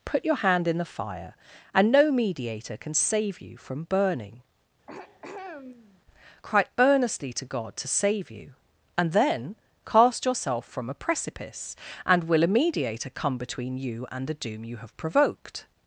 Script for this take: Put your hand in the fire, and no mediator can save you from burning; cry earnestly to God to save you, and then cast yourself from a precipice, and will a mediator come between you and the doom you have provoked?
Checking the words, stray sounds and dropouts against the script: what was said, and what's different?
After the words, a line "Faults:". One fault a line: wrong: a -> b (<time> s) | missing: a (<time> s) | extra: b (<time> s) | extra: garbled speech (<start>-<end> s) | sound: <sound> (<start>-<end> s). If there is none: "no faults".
Put your hand in the fire, and no mediator can save you from burning; cry earnestly to God to save you, and then cast yourself from a precipice, and will a mediator come between you and the doom you have provoked?
Faults:
sound: throat clearing (4.9-6.0 s)